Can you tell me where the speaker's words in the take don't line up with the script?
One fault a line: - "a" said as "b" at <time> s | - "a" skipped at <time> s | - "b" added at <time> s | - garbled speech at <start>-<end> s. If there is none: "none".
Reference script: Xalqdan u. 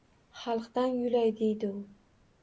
- "yulay deydi" added at 1.0 s